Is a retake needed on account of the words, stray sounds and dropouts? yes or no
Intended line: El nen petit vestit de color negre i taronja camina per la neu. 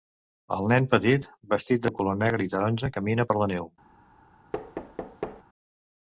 yes